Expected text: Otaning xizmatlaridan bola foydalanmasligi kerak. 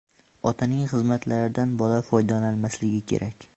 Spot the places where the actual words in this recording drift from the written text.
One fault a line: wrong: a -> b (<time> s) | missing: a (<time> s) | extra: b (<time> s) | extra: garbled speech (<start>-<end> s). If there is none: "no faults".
no faults